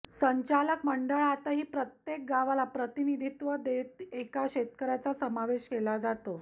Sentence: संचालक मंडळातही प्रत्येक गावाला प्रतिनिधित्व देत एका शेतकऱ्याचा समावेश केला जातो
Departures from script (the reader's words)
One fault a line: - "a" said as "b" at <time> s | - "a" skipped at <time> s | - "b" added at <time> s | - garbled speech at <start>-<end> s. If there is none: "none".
none